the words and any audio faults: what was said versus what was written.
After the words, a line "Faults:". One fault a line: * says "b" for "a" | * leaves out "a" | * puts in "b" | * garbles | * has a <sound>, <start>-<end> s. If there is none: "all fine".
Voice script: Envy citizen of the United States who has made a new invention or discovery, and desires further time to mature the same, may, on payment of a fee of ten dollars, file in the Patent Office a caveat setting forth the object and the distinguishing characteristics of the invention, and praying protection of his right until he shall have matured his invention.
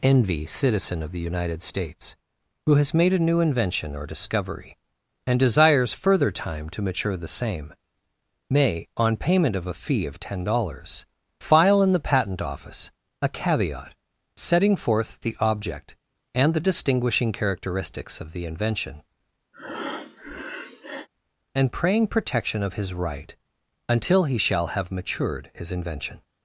Envy citizen of the United States who has made a new invention or discovery, and desires further time to mature the same, may, on payment of a fee of ten dollars, file in the Patent Office a caveat setting forth the object and the distinguishing characteristics of the invention, and praying protection of his right until he shall have matured his invention.
Faults:
* has a breath, 19.5-21.1 s